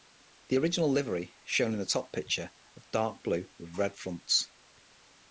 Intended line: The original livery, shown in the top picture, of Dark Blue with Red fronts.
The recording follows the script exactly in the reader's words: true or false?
true